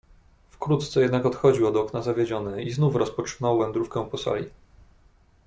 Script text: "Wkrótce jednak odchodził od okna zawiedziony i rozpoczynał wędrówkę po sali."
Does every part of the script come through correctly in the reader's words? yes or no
no